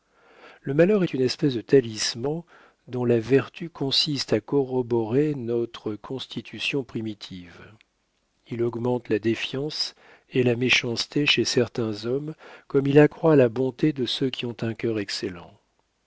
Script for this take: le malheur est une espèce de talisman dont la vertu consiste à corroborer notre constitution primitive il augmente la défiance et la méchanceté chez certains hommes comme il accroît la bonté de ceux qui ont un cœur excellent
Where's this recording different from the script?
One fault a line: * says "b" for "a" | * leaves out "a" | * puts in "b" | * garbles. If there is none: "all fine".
all fine